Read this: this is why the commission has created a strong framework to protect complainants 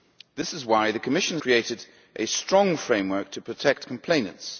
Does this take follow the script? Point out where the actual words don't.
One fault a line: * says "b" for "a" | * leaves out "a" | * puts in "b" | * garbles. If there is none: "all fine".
* leaves out "has"